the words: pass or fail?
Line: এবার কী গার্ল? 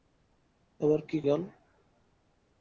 pass